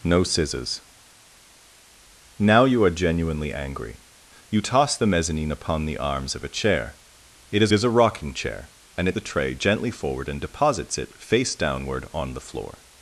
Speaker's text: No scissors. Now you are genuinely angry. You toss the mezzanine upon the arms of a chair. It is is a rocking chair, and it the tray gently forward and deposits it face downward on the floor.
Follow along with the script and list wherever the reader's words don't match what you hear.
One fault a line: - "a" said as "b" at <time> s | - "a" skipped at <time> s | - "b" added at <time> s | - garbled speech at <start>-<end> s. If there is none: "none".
none